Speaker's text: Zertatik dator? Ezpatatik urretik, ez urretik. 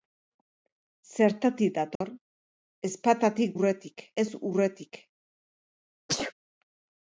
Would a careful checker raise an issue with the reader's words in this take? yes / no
no